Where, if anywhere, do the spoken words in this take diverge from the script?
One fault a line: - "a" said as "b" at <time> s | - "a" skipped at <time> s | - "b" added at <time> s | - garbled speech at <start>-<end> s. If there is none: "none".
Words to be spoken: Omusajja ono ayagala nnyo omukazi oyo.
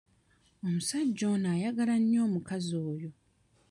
none